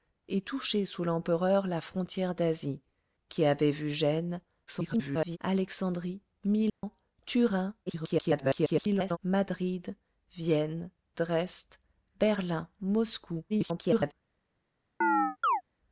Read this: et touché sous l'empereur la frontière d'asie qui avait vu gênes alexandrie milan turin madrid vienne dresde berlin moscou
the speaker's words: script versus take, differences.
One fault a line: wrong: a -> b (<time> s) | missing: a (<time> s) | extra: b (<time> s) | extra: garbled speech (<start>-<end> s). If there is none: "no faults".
extra: garbled speech (4.7-5.4 s)
extra: garbled speech (7.9-9.2 s)
extra: garbled speech (13.5-14.1 s)